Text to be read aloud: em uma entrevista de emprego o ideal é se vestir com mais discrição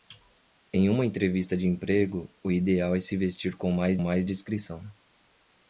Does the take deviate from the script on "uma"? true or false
false